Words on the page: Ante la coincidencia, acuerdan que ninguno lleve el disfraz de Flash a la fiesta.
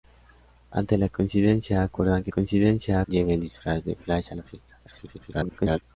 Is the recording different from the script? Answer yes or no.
yes